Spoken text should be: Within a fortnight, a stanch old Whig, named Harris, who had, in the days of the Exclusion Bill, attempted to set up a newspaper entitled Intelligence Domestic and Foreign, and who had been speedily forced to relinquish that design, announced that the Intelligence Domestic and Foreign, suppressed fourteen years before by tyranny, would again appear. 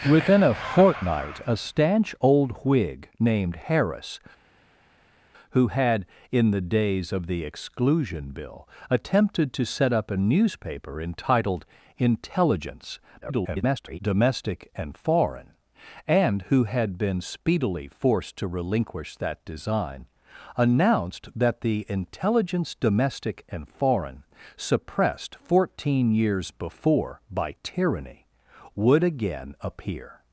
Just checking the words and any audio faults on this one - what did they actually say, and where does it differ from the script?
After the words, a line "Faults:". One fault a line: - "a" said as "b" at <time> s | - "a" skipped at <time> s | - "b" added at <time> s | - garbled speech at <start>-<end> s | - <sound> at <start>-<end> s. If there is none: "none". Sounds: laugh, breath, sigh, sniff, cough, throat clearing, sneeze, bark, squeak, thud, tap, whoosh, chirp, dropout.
Within a fortnight, a stanch old Whig, named Harris, who had, in the days of the Exclusion Bill, attempted to set up a newspaper entitled Intelligence [garbled] Domestic and Foreign, and who had been speedily forced to relinquish that design, announced that the Intelligence Domestic and Foreign, suppressed fourteen years before by tyranny, would again appear.
Faults:
- garbled speech at 13.2-14.0 s